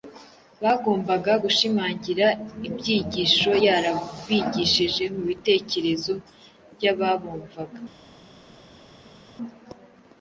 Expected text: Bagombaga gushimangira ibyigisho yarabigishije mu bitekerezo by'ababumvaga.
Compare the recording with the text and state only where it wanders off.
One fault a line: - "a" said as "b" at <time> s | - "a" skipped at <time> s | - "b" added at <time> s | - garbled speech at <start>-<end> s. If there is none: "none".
none